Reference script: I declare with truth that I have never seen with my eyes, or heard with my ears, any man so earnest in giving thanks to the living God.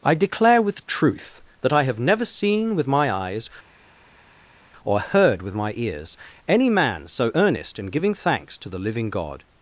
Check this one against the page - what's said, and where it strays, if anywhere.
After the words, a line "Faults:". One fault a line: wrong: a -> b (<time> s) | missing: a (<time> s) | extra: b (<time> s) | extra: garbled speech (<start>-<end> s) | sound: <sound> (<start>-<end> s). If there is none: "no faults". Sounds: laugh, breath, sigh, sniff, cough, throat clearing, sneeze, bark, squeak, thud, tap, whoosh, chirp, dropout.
I declare with truth that I have never seen with my eyes, or heard with my ears, any man so earnest in giving thanks to the living God.
Faults:
no faults